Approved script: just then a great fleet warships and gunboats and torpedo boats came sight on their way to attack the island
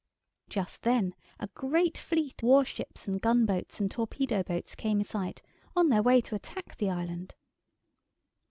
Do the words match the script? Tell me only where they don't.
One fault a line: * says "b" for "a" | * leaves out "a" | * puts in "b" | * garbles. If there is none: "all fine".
all fine